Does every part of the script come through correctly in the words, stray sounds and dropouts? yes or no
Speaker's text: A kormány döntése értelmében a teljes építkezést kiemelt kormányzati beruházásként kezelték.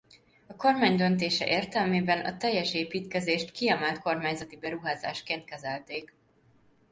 yes